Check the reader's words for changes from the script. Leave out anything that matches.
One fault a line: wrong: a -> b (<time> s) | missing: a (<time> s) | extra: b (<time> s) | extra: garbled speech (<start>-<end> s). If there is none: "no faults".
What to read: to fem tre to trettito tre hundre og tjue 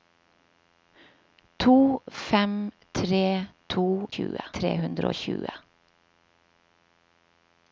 wrong: trettito -> tjue (4.1 s)